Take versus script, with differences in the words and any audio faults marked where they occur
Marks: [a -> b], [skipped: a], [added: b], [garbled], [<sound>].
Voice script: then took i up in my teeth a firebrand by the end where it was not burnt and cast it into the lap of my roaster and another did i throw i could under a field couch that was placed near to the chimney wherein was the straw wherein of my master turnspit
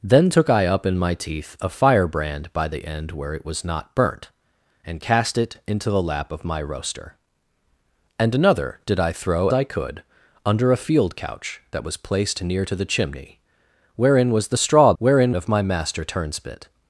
then took i up in my teeth a firebrand by the end where it was not burnt and cast it into the lap of my roaster and another did i throw i could under a field couch that was placed near to the chimney wherein was the straw wherein of my master turnspit